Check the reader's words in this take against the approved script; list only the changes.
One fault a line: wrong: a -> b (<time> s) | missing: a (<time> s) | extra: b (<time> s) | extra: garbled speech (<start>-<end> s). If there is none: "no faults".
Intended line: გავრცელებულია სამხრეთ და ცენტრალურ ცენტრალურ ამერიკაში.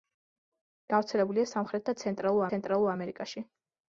no faults